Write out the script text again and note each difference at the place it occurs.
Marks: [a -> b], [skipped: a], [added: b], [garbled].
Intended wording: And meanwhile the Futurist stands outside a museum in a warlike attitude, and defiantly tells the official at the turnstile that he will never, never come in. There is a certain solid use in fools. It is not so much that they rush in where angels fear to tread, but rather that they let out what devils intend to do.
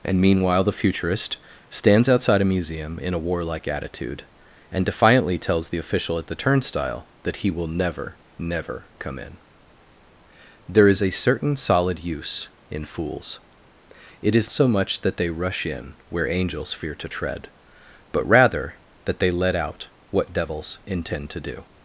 And meanwhile the Futurist stands outside a museum in a warlike attitude, and defiantly tells the official at the turnstile that he will never, never come in. There is a certain solid use in fools. It is [skipped: not] so much that they rush in where angels fear to tread, but rather that they let out what devils intend to do.